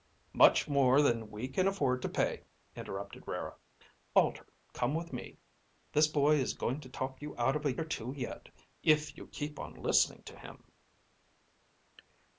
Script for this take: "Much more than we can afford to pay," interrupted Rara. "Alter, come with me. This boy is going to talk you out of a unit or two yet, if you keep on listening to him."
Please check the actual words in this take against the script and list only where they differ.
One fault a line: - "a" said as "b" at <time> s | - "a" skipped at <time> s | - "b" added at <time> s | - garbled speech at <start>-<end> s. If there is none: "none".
- "unit" skipped at 7.8 s